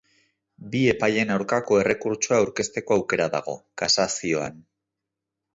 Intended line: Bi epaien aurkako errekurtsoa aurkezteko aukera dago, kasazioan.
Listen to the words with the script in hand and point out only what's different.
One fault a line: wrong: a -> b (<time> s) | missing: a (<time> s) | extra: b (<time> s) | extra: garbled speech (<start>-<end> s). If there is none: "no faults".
no faults